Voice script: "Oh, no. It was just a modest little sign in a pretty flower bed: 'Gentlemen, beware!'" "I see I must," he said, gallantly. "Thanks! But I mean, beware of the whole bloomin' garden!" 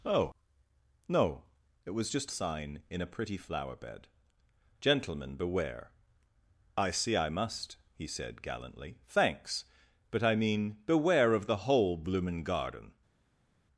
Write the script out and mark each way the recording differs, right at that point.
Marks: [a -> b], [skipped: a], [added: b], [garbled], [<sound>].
"Oh, no. It was just [skipped: a modest little] sign in a pretty flower bed: 'Gentlemen, beware!'" "I see I must," he said, gallantly. "Thanks! But I mean, beware of the whole bloomin' garden!"